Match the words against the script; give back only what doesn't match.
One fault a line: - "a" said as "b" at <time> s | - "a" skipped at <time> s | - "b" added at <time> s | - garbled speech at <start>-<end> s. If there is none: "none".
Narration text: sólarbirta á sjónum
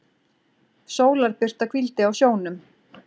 - "hvíldi" added at 1.7 s